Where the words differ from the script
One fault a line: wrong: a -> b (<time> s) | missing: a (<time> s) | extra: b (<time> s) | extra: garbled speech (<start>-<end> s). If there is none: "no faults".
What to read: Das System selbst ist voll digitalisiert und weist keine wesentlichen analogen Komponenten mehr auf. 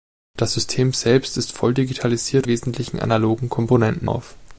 missing: und weist keine (2.5 s)
missing: mehr (4.1 s)